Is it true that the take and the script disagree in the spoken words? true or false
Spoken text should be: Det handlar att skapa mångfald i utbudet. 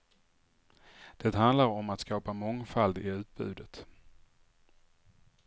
true